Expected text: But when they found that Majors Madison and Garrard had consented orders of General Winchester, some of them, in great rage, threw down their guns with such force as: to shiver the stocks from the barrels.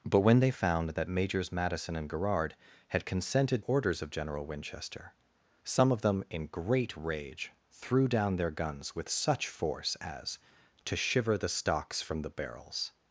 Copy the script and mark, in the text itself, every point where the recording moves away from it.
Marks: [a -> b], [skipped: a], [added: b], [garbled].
But when they found that Majors Madison and Garrard had consented orders of General Winchester, some of them, in great rage, threw down their guns with such force as: to shiver the stocks from the barrels.